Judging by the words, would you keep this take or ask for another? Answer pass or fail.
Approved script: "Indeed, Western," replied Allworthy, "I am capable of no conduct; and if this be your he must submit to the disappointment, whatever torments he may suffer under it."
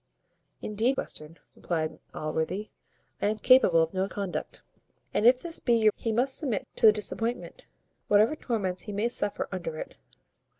pass